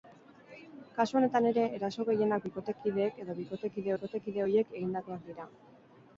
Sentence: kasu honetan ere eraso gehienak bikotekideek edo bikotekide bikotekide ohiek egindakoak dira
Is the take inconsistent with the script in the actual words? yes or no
no